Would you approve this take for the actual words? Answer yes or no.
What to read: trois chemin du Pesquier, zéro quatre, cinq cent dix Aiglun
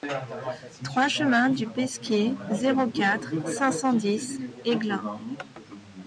yes